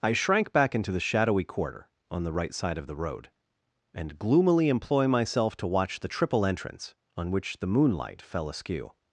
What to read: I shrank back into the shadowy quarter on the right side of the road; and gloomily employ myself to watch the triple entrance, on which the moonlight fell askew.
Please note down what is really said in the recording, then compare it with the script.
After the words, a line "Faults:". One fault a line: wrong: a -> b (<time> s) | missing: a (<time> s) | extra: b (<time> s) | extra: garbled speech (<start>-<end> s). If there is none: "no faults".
I shrank back into the shadowy quarter on the right side of the road; and gloomily employ myself to watch the triple entrance, on which the moonlight fell askew.
Faults:
no faults